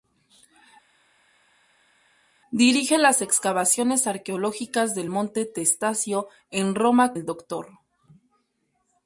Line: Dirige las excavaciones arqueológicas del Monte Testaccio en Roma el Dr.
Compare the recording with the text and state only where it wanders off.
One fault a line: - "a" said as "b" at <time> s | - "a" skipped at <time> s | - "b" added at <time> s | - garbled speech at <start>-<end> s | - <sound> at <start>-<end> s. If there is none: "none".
none